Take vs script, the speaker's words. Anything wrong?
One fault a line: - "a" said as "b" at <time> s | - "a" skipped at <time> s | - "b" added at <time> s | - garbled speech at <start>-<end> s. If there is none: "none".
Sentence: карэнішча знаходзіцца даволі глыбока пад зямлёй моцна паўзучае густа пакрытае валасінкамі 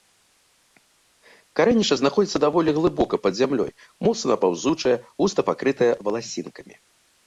none